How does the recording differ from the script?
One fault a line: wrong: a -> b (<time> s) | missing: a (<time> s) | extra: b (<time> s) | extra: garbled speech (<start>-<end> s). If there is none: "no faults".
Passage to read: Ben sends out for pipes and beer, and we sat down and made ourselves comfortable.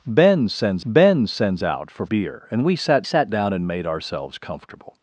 extra: ben sends (0.8 s)
missing: pipes and (2.1 s)
extra: sat (3.0 s)